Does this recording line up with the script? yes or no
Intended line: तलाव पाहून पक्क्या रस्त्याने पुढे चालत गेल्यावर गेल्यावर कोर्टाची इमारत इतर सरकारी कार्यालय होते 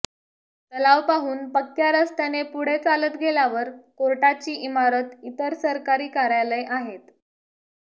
no